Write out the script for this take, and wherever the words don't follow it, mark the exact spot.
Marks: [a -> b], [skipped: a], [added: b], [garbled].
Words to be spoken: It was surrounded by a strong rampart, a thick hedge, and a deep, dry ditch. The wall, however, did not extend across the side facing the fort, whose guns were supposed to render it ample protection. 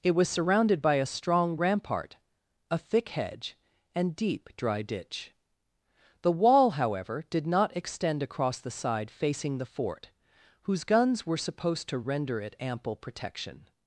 It was surrounded by a strong rampart, a thick hedge, and [skipped: a] deep, dry ditch. The wall, however, did not extend across the side facing the fort, whose guns were supposed to render it ample protection.